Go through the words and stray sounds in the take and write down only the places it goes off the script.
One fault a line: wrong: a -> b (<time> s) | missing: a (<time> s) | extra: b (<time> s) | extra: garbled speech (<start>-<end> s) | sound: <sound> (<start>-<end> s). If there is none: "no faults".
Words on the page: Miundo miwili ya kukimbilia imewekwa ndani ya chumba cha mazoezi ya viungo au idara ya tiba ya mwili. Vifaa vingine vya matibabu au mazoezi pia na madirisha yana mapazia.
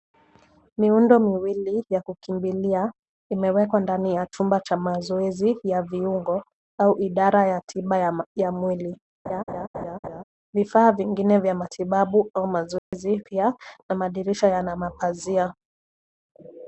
sound: laugh (9.3-10.2 s)
sound: dropout (12.8-12.9 s)